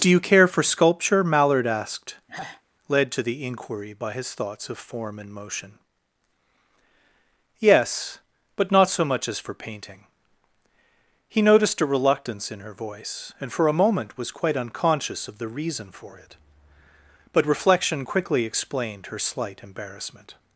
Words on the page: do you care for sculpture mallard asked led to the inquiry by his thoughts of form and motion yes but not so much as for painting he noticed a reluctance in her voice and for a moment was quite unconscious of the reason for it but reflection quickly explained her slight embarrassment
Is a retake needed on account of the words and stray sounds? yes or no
yes